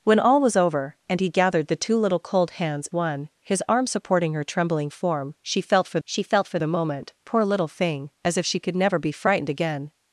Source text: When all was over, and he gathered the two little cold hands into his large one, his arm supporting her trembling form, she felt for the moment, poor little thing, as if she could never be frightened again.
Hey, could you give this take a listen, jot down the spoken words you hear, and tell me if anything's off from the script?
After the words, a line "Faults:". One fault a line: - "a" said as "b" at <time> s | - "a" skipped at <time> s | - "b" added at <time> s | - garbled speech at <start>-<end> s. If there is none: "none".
When all was over, and he gathered the two little cold hands one, his arm supporting her trembling form, she felt for she felt for the moment, poor little thing, as if she could never be frightened again.
Faults:
- "into his large" skipped at 2.9 s
- "she felt for" added at 6.0 s